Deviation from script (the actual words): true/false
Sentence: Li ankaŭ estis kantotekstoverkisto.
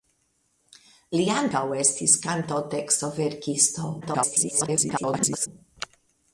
true